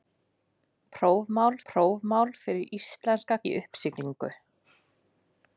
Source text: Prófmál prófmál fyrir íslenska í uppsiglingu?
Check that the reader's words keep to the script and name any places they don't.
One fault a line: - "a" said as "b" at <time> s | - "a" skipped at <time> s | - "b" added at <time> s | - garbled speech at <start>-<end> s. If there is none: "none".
none